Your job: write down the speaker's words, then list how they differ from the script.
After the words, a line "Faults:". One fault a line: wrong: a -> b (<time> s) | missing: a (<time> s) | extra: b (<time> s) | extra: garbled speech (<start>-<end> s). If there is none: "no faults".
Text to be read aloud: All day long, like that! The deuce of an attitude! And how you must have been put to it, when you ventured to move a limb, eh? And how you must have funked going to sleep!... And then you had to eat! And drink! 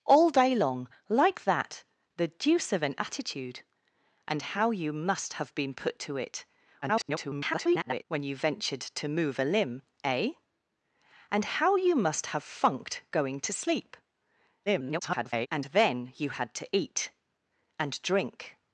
All day long, like that! The deuce of an attitude! And how you must have been put to it, [garbled] when you ventured to move a limb, eh? And how you must have funked going to sleep!... [garbled] And then you had to eat! And drink!
Faults:
extra: garbled speech (6.8-8.1 s)
extra: garbled speech (14.7-15.5 s)